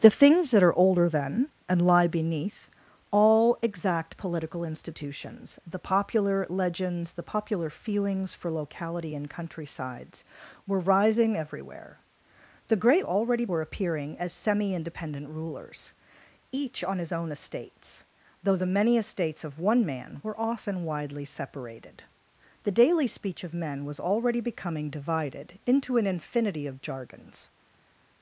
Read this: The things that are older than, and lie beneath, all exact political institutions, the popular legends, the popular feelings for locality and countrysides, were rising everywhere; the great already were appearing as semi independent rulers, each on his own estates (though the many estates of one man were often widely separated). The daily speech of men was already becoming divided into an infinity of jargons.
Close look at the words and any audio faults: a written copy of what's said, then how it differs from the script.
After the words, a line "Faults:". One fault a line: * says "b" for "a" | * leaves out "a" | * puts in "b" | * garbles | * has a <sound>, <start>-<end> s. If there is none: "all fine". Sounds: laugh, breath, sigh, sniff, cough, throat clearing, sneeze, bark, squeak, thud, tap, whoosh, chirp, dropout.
The things that are older than, and lie beneath, all exact political institutions, the popular legends, the popular feelings for locality and countrysides, were rising everywhere; the great already were appearing as semi independent rulers, each on his own estates (though the many estates of one man were often widely separated). The daily speech of men was already becoming divided into an infinity of jargons.
Faults:
all fine